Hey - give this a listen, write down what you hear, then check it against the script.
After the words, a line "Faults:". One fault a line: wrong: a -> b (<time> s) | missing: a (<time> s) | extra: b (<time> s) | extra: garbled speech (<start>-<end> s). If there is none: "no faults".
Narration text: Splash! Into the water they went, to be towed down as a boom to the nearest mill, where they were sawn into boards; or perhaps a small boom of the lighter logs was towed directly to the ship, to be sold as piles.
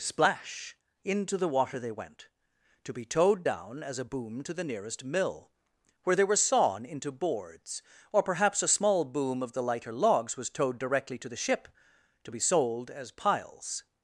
Splash! Into the water they went, to be towed down as a boom to the nearest mill, where they were sawn into boards; or perhaps a small boom of the lighter logs was towed directly to the ship, to be sold as piles.
Faults:
no faults